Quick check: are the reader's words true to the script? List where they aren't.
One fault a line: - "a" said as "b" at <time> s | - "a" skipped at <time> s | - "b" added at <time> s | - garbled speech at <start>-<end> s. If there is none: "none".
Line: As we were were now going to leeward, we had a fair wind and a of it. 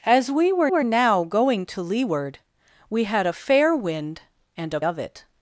none